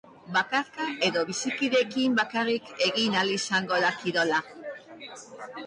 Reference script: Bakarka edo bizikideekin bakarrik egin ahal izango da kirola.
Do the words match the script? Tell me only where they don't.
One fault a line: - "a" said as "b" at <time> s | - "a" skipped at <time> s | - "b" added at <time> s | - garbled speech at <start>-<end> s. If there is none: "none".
none